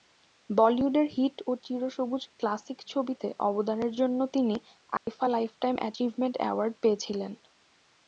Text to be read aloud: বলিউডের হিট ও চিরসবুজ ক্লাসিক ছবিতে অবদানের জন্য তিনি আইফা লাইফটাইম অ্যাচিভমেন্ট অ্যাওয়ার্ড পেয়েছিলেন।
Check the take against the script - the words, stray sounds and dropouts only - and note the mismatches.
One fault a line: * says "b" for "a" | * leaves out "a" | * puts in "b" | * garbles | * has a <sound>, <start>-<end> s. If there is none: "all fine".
* has a dropout, 5.0-5.1 s